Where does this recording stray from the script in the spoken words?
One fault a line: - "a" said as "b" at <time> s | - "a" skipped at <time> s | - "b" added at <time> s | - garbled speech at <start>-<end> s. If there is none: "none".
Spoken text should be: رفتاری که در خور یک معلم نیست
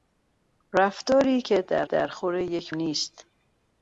- "در" added at 1.8 s
- "معلم" skipped at 2.7 s